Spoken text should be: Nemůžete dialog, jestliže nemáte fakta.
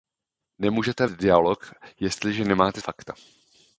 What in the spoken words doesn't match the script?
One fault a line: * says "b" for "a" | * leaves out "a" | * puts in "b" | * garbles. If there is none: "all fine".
all fine